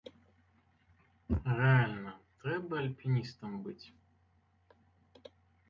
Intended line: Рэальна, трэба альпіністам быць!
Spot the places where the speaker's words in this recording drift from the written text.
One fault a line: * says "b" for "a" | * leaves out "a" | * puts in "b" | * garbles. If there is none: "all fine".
all fine